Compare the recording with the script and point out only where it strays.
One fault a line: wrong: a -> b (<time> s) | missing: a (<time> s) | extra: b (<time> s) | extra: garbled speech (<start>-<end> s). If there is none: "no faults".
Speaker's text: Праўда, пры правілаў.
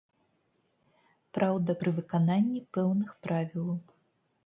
extra: выкананні пэўных (2.0 s)